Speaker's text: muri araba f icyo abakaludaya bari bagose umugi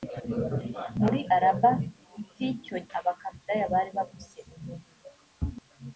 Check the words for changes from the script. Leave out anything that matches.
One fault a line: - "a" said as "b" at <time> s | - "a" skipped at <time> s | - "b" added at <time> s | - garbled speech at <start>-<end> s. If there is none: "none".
none